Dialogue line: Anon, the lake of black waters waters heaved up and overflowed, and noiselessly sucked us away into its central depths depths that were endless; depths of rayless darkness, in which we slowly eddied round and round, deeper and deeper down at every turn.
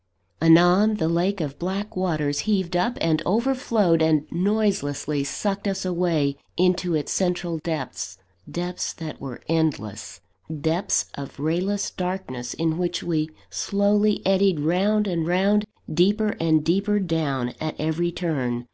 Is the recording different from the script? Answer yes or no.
yes